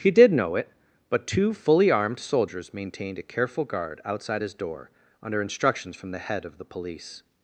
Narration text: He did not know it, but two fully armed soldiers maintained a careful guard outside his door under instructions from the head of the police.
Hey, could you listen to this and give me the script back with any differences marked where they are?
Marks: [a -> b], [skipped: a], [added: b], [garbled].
He did [skipped: not] know it, but two fully armed soldiers maintained a careful guard outside his door under instructions from the head of the police.